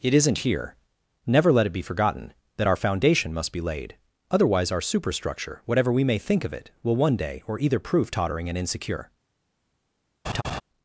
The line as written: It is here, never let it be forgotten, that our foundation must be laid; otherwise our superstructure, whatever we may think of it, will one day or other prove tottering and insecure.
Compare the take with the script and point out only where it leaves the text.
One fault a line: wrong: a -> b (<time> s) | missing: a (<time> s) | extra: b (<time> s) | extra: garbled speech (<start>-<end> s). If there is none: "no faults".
wrong: is -> isn't (0.1 s)
wrong: other -> either (7.6 s)